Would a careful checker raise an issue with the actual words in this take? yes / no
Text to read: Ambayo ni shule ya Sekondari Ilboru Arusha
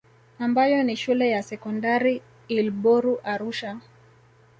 no